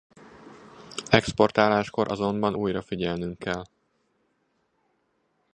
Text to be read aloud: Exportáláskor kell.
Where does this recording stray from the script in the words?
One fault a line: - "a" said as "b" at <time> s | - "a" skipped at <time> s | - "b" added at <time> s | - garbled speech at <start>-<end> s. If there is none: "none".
- "azonban újra figyelnünk" added at 2.1 s